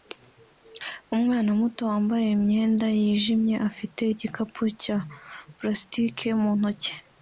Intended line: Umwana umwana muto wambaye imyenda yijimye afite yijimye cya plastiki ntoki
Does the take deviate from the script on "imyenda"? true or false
false